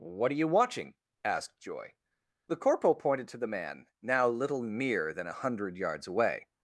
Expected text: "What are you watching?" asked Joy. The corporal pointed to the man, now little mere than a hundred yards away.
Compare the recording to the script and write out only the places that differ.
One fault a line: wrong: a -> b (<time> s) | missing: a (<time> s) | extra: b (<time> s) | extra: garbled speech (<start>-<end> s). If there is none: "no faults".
no faults